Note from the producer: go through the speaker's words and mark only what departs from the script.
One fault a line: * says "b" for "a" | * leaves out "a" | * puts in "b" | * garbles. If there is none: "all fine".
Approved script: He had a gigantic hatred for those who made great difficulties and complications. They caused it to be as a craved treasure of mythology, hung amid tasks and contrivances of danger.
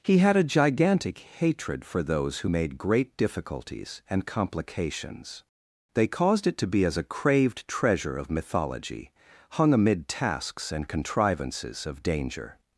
all fine